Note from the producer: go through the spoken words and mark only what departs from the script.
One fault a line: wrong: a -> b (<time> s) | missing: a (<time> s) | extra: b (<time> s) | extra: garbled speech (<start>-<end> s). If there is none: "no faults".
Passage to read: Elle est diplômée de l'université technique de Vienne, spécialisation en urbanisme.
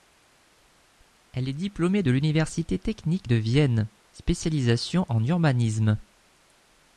no faults